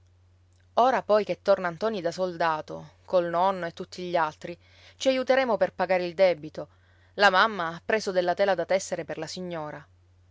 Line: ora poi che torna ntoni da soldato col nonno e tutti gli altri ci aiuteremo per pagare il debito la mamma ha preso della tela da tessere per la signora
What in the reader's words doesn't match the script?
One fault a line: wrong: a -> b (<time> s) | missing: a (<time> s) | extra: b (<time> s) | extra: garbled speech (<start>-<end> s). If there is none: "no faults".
no faults